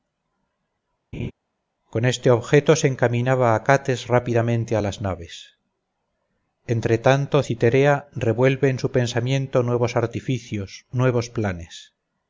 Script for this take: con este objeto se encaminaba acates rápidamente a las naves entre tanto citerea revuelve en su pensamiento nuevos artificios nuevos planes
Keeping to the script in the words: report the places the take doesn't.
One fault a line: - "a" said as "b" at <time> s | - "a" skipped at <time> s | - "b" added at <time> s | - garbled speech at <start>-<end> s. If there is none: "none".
none